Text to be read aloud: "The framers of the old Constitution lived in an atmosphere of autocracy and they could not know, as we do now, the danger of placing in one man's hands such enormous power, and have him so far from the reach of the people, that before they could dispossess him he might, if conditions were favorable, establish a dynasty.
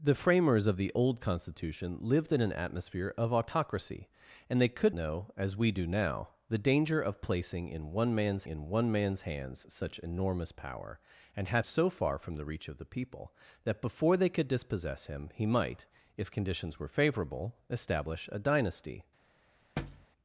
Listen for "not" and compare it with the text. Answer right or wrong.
wrong